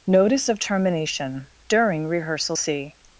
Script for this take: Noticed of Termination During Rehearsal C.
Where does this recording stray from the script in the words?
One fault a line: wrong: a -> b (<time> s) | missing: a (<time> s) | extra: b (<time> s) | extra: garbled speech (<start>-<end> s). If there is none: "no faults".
wrong: Noticed -> Notice (0.1 s)